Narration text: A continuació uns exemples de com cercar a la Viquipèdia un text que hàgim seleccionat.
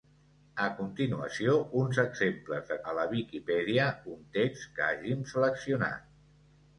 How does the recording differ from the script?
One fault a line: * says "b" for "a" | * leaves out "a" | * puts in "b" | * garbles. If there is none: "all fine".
* leaves out "com cercar"